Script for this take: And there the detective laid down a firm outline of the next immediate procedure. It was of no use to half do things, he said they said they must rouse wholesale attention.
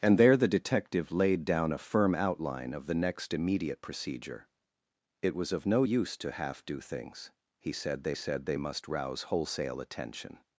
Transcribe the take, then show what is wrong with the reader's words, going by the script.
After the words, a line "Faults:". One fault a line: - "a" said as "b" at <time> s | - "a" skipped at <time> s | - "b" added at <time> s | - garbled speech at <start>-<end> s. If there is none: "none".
And there the detective laid down a firm outline of the next immediate procedure. It was of no use to half do things, he said they said they must rouse wholesale attention.
Faults:
none